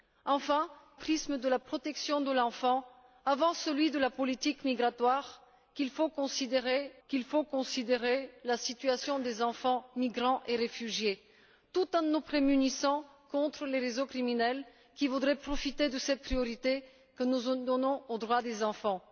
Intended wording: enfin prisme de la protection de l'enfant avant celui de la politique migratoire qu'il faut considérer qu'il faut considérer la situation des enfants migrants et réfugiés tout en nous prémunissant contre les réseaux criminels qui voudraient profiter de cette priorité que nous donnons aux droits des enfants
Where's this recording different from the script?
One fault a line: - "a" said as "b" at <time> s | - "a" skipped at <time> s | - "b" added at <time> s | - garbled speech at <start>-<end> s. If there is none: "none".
none